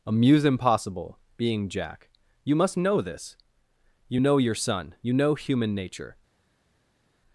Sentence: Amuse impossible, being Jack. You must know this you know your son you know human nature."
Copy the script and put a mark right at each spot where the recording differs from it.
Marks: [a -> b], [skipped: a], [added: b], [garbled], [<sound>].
Amuse impossible, being Jack. You must know this you know your son you know human nature."